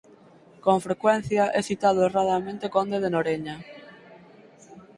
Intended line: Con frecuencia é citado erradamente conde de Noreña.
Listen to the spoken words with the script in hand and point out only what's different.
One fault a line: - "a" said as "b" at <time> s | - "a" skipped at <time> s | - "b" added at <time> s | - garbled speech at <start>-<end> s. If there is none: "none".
none